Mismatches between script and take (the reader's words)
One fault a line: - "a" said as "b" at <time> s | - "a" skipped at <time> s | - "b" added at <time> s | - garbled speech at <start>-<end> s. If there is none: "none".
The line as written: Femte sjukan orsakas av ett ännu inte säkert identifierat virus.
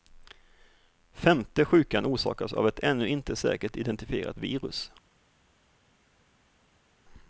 none